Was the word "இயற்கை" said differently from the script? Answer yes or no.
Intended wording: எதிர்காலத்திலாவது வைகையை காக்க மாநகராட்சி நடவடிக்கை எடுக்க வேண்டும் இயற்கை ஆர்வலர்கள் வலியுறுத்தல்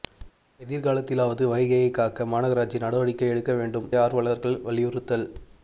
yes